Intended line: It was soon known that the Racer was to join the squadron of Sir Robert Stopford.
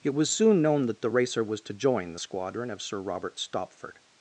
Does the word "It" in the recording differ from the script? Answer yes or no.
no